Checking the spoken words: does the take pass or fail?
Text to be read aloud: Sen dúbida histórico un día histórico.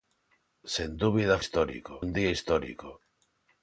pass